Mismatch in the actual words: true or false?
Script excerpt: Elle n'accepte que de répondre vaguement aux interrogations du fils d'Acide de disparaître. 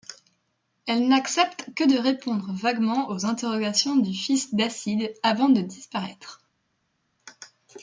true